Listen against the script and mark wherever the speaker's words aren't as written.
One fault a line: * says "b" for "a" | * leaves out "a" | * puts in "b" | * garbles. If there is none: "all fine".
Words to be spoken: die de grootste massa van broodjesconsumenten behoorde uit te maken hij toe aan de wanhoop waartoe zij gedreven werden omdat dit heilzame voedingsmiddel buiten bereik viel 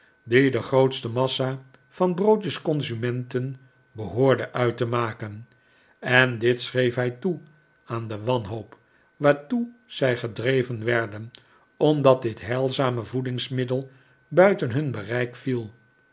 * puts in "en dit schreef"
* puts in "hun"